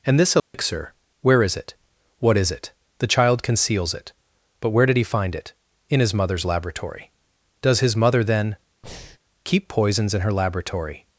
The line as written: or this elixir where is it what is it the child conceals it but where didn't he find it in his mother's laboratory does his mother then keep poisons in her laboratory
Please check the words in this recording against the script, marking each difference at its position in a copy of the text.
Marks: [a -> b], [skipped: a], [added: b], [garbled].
[or -> and] this elixir where is it what is it the child conceals it but where [didn't -> did] he find it in his mother's laboratory does his mother then keep poisons in her laboratory